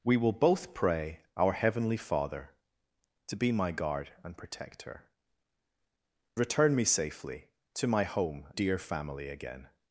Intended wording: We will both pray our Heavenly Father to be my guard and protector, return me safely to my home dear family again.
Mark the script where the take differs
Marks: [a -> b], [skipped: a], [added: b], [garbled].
We will both pray our Heavenly Father to be my guard and protector, return me safely to my home dear family again.